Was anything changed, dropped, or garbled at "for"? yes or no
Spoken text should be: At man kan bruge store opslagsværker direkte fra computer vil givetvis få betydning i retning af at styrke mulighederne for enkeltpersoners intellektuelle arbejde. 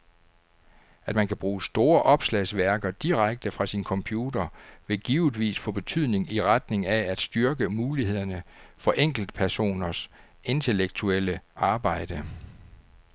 no